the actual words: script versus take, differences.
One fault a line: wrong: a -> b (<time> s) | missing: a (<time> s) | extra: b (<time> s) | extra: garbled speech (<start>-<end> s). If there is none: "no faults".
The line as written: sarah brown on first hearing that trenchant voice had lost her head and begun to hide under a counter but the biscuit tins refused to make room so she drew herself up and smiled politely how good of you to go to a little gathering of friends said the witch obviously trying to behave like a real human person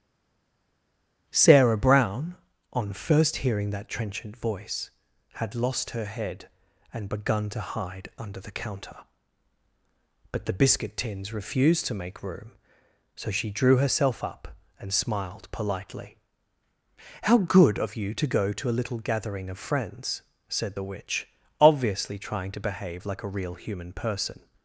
wrong: a -> the (8.4 s)